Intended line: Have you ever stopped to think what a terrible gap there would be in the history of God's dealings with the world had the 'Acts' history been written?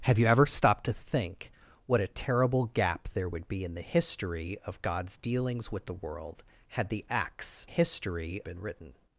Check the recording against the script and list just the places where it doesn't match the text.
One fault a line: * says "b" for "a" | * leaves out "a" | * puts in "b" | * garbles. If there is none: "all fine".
all fine